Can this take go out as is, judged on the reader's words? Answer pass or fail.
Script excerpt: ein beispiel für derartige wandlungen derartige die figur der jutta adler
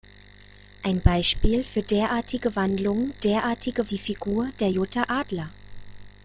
pass